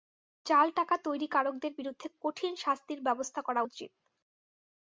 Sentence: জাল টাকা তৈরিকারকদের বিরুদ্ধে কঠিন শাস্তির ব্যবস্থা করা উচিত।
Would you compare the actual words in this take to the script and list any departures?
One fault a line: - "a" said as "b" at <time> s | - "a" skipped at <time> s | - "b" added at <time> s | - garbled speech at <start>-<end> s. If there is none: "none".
none